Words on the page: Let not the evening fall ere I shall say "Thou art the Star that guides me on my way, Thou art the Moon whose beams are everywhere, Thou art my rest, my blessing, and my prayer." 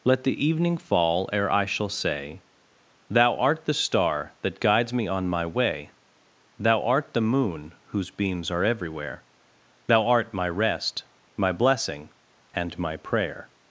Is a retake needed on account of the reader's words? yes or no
yes